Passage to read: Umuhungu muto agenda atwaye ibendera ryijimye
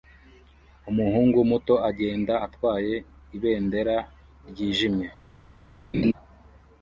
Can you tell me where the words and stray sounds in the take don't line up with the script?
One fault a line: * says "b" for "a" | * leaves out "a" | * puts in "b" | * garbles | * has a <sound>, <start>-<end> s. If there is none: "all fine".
* has a laugh, 5.9-6.1 s